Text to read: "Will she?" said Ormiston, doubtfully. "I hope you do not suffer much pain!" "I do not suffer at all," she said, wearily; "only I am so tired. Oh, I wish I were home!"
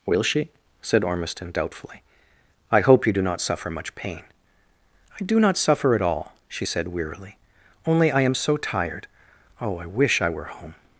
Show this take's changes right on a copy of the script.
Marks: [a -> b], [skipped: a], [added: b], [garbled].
"Will she?" said Ormiston, doubtfully. "I hope you do not suffer much pain!" "I do not suffer at all," she said, wearily; "only I am so tired. Oh, I wish I were home!"